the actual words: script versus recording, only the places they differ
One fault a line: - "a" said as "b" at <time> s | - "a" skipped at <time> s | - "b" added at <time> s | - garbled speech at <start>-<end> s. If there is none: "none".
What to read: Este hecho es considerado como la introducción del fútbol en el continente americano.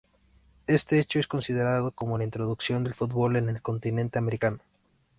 none